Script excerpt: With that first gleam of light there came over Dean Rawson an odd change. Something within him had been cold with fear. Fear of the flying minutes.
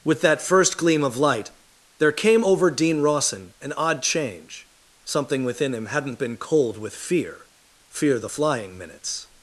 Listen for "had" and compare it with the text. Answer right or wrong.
wrong